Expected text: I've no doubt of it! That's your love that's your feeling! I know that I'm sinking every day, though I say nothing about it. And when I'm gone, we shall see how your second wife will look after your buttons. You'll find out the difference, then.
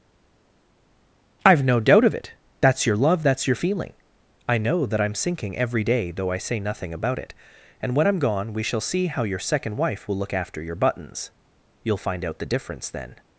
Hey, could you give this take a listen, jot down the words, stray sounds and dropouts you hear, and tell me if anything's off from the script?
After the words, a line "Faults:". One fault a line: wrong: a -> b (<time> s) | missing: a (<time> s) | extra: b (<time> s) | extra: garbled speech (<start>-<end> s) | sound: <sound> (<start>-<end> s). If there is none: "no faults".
I've no doubt of it! That's your love that's your feeling! I know that I'm sinking every day, though I say nothing about it. And when I'm gone, we shall see how your second wife will look after your buttons. You'll find out the difference, then.
Faults:
no faults